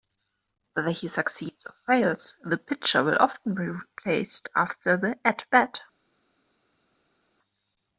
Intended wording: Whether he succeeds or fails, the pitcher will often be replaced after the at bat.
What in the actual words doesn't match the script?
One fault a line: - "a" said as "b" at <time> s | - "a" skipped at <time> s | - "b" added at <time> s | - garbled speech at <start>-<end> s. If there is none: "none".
none